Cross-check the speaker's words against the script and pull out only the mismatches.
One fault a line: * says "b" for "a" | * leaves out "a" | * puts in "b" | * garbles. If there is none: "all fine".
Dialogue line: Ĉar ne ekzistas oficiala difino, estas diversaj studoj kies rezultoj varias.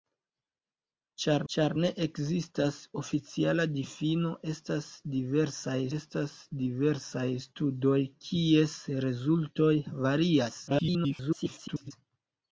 * puts in "ĉar"
* puts in "estas diversaj"
* garbles